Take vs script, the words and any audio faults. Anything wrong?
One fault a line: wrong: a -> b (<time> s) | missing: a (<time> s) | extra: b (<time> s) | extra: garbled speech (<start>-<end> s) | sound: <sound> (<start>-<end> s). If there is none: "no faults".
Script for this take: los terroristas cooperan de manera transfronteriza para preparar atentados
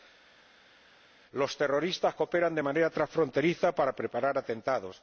no faults